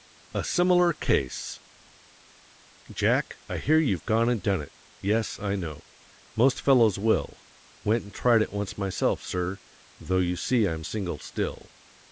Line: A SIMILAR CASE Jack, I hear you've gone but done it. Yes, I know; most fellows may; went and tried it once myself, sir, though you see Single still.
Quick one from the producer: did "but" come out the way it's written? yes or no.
no